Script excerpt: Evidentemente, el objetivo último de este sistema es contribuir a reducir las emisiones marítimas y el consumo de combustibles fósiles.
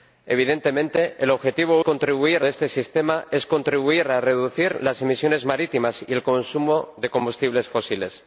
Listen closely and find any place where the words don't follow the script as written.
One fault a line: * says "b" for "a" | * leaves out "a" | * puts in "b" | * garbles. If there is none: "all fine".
* says "contribuir" for "último"